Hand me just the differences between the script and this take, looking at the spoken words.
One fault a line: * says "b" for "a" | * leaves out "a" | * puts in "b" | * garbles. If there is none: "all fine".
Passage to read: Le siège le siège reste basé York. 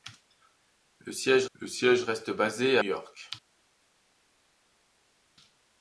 all fine